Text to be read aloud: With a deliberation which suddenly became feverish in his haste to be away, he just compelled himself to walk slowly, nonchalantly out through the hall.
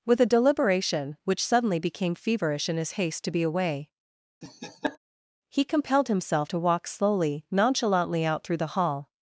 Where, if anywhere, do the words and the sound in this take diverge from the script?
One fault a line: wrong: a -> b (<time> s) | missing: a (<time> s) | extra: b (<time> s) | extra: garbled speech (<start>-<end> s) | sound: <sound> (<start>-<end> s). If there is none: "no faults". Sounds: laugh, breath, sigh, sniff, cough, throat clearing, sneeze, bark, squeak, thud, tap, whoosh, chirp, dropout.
sound: laugh (4.4-5.0 s)
missing: just (5.6 s)